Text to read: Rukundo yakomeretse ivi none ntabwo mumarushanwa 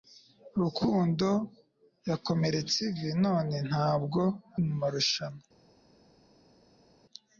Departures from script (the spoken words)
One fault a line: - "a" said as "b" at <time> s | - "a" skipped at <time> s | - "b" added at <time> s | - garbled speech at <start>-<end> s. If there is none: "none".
none